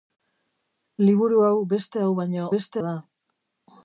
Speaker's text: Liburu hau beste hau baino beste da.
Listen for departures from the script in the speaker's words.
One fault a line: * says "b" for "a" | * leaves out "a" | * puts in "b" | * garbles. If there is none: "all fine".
all fine